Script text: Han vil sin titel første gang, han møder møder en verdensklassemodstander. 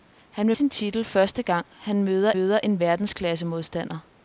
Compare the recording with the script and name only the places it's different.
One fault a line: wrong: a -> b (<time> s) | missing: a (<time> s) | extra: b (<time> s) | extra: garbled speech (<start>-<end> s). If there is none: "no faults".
no faults